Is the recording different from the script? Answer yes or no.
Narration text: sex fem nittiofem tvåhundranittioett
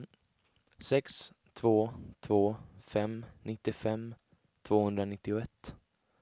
yes